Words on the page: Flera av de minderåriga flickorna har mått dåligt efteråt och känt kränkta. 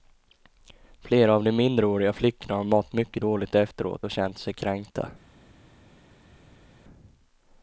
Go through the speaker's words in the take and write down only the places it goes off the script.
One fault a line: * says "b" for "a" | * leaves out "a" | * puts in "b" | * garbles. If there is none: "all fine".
* puts in "mycket"
* puts in "sig"